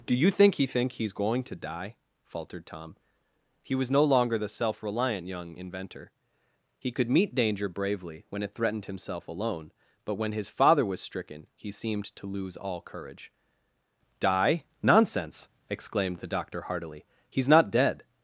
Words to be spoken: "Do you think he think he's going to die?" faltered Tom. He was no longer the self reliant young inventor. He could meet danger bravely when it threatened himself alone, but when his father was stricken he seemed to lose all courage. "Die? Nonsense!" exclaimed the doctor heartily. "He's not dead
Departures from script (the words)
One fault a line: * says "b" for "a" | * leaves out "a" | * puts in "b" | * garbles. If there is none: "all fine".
all fine